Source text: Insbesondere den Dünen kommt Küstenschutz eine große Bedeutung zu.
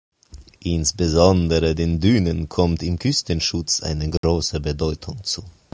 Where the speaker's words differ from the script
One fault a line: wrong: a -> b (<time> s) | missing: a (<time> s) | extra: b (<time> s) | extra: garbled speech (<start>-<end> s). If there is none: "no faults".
extra: im (2.8 s)